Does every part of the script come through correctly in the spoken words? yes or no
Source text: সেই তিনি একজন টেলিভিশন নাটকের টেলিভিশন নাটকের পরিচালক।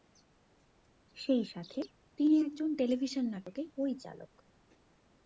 no